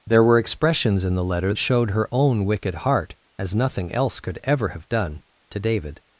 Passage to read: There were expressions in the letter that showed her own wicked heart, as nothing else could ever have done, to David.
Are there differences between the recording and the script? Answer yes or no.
yes